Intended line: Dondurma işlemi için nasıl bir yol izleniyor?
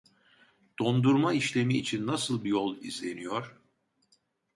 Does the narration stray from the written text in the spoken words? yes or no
yes